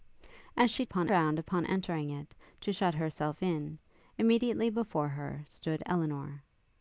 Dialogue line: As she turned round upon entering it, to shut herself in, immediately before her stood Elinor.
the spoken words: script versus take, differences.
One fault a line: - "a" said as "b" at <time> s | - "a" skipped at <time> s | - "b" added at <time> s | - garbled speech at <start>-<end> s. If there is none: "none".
- "turned" said as "upon" at 0.8 s